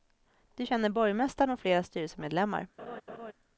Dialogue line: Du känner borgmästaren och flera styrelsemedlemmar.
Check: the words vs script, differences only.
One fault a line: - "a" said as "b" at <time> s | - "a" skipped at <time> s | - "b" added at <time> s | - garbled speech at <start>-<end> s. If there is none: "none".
none